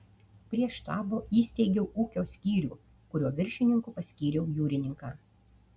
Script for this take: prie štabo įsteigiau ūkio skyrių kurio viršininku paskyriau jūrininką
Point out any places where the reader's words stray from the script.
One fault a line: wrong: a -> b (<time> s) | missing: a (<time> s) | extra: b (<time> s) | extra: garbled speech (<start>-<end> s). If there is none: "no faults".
no faults